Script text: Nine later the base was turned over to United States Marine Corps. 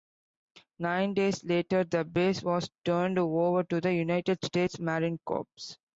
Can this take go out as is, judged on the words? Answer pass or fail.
fail